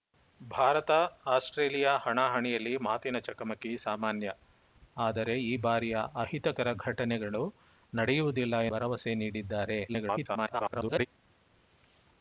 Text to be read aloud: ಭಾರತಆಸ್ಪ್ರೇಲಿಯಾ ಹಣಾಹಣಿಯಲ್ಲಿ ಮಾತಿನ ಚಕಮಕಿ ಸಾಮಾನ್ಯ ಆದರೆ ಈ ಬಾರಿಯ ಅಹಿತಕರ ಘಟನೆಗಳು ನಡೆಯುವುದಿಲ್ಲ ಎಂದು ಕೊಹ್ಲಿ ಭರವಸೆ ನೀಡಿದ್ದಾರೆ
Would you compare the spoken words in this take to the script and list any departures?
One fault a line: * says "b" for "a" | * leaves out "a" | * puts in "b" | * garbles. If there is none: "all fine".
* leaves out "ಎಂದು ಕೊಹ್ಲಿ"
* garbles